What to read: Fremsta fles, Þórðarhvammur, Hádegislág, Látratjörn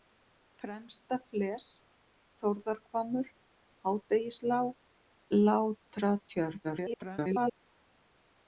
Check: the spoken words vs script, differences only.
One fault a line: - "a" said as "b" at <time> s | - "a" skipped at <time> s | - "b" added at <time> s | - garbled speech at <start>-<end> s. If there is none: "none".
- garbled speech at 6.6-7.6 s